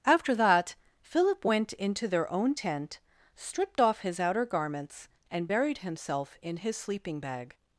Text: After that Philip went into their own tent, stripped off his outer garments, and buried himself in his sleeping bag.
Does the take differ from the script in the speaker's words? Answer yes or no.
no